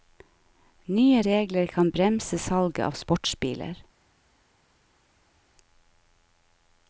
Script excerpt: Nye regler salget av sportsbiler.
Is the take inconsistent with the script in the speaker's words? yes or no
yes